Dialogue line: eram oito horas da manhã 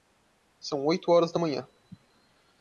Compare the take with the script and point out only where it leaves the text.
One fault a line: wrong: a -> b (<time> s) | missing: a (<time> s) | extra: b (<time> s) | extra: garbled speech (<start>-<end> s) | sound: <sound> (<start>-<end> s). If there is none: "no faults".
wrong: eram -> são (0.6 s)